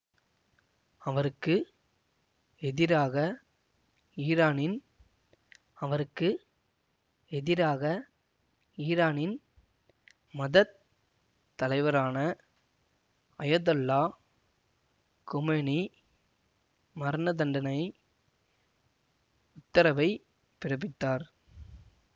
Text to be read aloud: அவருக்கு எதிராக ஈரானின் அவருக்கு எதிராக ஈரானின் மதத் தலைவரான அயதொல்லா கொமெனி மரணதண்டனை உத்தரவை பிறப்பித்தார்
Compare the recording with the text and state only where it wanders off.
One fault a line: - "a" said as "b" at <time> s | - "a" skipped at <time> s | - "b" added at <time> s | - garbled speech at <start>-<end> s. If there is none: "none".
none